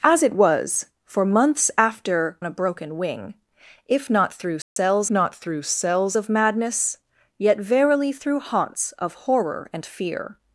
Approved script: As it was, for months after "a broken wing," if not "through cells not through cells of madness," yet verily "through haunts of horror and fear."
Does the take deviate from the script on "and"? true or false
false